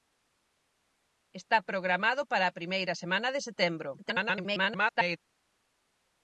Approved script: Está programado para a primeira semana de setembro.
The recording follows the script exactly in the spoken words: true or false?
false